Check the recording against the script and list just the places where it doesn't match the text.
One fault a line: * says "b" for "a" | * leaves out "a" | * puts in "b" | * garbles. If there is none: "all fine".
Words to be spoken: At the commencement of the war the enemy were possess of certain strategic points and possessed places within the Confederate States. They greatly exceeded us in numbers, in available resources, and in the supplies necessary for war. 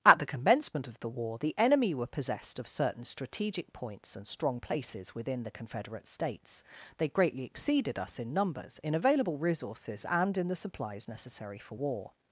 * says "possessed" for "possess"
* says "strong" for "possessed"